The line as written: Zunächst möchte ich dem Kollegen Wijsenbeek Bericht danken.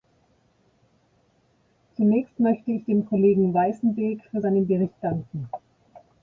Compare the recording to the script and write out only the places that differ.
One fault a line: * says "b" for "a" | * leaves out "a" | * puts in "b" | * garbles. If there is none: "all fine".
* puts in "für seinen"